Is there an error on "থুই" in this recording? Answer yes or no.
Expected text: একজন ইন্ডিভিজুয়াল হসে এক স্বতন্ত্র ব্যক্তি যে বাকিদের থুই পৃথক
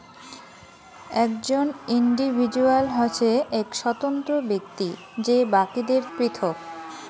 yes